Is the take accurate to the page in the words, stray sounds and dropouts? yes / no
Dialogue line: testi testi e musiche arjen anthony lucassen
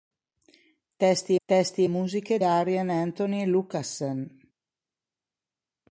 yes